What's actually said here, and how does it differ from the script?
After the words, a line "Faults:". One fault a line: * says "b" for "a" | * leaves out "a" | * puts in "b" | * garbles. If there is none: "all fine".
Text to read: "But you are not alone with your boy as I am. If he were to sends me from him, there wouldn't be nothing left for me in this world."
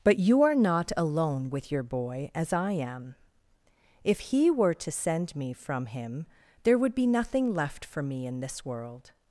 "But you are not alone with your boy as I am. If he were to send me from him, there would be nothing left for me in this world."
Faults:
* says "send" for "sends"
* says "would" for "wouldn't"